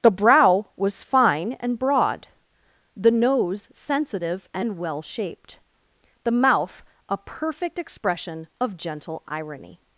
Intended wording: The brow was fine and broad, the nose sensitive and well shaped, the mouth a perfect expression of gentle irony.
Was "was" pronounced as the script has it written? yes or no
yes